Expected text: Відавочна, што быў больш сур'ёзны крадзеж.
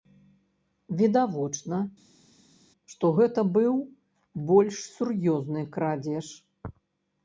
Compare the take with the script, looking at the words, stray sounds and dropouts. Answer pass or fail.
fail